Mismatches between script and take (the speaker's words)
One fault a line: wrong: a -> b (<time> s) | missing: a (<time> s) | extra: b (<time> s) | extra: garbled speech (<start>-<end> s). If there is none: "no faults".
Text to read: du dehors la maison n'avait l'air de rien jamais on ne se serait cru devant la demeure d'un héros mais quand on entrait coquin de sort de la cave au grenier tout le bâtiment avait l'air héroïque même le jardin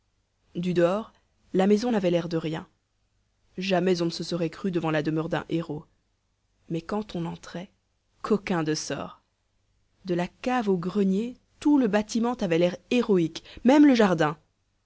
no faults